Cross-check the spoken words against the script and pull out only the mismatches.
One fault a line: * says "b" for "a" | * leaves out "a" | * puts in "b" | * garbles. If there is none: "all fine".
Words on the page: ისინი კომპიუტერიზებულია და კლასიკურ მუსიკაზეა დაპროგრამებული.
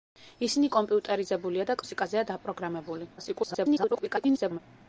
* leaves out "კლასიკურ"
* garbles